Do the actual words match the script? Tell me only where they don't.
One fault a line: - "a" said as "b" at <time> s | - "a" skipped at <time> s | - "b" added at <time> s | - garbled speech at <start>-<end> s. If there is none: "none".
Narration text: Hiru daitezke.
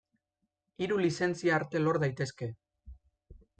- "lizentzia arte lor" added at 1.0 s